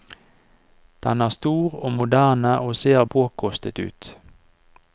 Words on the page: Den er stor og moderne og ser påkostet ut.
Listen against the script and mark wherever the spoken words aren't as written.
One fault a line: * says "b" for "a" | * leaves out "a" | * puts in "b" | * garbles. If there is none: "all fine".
all fine